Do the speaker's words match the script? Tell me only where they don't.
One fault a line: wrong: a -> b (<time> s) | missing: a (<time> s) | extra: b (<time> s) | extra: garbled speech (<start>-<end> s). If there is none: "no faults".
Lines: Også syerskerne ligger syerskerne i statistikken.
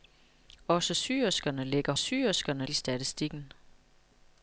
no faults